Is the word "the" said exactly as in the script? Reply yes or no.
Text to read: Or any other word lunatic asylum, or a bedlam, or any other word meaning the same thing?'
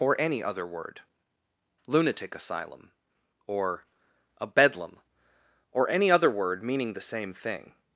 yes